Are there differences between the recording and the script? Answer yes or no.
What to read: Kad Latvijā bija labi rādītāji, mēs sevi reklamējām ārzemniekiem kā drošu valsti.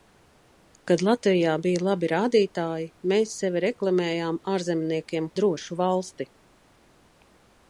yes